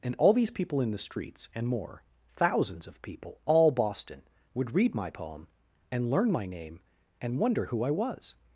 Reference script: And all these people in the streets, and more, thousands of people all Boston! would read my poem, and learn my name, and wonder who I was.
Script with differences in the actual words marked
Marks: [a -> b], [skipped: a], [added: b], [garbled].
And all these people in the streets, and more, thousands of people all Boston! would read my poem, and learn my name, and wonder who I was.